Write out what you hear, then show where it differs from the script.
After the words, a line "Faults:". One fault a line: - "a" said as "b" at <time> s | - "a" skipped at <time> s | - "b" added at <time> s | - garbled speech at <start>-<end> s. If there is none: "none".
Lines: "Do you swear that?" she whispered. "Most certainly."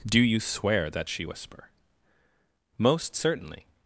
"Do you swear that?" she whisper. "Most certainly."
Faults:
- "whispered" said as "whisper" at 1.2 s